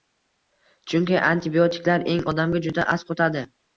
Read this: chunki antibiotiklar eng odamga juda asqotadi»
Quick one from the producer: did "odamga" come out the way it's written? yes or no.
yes